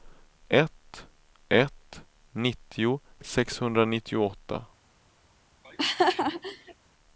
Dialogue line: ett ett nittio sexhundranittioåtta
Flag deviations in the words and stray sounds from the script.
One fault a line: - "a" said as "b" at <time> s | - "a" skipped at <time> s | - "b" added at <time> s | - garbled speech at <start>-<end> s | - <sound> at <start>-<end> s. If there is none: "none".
- laugh at 5.6-6.7 s